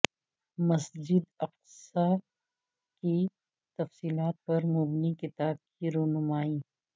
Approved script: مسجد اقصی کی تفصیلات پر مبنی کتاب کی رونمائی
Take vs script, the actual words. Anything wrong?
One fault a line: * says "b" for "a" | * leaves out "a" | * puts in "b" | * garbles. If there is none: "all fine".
all fine